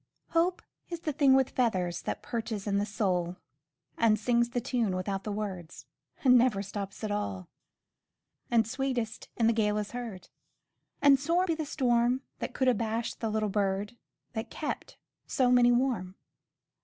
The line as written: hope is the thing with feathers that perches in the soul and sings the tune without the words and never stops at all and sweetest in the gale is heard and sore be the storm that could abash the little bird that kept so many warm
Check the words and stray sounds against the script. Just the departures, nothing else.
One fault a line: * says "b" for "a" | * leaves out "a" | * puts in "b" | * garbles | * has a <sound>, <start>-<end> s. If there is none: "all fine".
all fine